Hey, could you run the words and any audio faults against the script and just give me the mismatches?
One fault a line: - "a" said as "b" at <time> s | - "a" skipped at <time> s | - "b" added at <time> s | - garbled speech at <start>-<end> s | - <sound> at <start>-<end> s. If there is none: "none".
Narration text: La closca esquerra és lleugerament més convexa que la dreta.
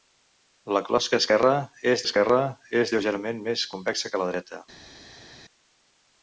- "esquerra és" added at 2.1 s